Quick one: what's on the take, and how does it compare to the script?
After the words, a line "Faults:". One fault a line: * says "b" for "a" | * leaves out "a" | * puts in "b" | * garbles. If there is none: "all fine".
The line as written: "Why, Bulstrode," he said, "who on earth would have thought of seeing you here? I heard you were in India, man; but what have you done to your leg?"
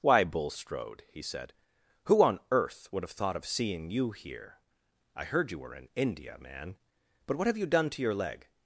"Why, Bulstrode," he said, "who on earth would have thought of seeing you here? I heard you were in India, man; but what have you done to your leg?"
Faults:
all fine